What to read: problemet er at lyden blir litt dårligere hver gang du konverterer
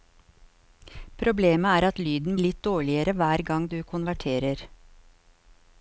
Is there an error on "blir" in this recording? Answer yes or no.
yes